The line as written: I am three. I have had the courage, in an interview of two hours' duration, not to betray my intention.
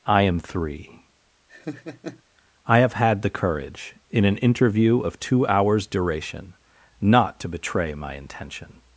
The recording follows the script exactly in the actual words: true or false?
true